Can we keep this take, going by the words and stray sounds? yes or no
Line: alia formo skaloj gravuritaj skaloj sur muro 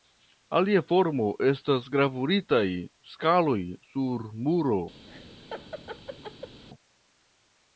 no